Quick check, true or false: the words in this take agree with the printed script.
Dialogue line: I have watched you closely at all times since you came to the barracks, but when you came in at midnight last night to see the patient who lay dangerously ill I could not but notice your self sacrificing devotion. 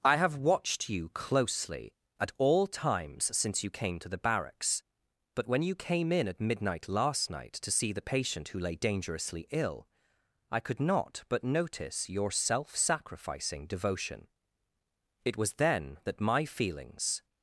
false